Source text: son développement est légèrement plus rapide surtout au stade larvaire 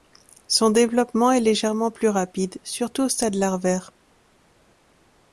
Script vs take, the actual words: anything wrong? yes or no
no